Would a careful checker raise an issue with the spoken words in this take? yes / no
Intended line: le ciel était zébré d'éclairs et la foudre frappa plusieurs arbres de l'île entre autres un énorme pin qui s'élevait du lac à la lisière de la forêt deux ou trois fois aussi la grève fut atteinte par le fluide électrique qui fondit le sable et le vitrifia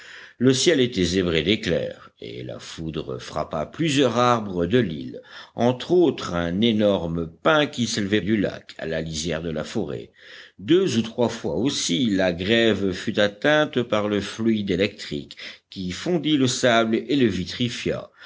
no